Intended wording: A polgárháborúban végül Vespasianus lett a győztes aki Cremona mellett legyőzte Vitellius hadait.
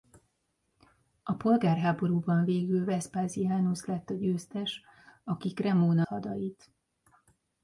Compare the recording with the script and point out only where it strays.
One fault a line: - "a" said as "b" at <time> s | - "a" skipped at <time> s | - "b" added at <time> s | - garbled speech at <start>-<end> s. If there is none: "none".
- "mellett legyőzte Vitellius" skipped at 6.0 s